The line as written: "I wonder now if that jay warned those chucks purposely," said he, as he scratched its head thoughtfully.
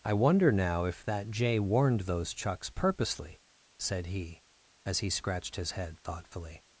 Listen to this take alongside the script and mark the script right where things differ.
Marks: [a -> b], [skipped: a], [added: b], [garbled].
"I wonder now if that jay warned those chucks purposely," said he, as he scratched [its -> his] head thoughtfully.